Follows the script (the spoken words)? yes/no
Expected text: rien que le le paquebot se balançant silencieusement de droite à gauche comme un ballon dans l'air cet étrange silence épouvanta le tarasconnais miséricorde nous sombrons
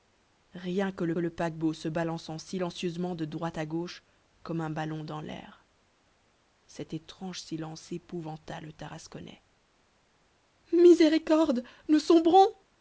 yes